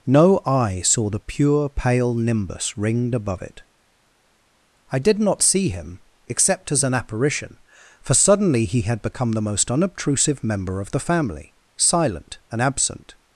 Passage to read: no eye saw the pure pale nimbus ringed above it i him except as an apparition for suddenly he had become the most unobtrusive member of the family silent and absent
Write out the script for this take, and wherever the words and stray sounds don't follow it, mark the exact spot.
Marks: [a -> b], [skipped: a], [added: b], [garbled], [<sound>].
no eye saw the pure pale nimbus ringed above it i [added: did not see] him except as an apparition for suddenly he had become the most unobtrusive member of the family silent and absent